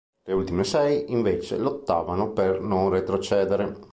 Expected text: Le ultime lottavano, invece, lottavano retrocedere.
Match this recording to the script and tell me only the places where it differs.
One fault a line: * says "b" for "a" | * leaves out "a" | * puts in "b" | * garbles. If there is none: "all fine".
* says "sei" for "lottavano"
* puts in "per non"